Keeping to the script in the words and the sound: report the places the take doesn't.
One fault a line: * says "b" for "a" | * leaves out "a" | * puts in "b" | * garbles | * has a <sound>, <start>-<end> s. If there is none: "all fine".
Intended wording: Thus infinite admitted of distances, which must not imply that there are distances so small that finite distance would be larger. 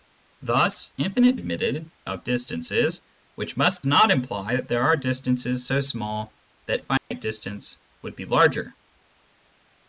* has a dropout, 7.0-7.1 s